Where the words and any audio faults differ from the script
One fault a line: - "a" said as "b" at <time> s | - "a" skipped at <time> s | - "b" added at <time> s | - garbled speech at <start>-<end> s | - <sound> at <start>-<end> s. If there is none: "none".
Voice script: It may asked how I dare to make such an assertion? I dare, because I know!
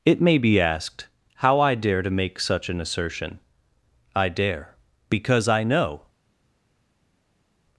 - "be" added at 0.4 s